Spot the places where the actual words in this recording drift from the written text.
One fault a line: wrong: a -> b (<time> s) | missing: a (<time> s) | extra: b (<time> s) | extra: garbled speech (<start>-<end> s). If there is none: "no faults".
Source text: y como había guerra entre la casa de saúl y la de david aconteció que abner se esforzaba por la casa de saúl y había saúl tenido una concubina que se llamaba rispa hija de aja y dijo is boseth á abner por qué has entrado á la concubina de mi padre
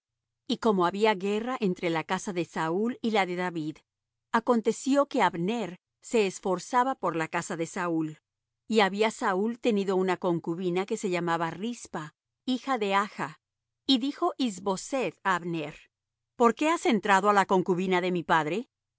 no faults